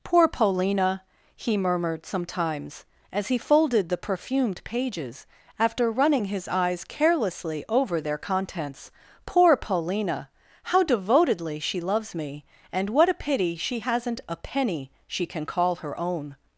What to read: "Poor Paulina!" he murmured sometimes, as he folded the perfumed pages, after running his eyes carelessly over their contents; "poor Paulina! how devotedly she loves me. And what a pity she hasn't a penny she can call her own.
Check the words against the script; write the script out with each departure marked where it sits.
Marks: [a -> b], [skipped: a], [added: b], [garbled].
"Poor Paulina!" he murmured sometimes, as he folded the perfumed pages, after running his eyes carelessly over their contents; "poor Paulina! how devotedly she loves me. And what a pity she hasn't a penny she can call her own.